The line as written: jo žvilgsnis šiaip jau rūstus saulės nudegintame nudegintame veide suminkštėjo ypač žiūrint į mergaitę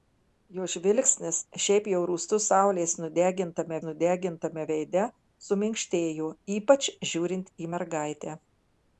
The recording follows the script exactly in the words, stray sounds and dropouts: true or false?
true